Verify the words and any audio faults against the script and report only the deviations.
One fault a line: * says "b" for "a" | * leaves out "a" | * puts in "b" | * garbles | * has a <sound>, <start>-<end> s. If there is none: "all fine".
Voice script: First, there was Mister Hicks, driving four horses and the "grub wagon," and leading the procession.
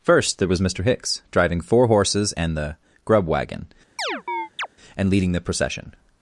* has a chirp, 4.0-4.7 s